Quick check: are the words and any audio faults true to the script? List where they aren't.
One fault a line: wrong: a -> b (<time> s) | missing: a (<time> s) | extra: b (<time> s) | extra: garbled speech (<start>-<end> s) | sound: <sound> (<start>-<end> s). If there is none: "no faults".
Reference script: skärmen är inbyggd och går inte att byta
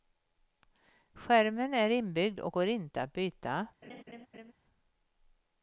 sound: laugh (3.8-4.5 s)